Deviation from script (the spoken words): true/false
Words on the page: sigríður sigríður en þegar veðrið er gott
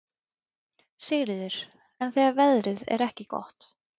true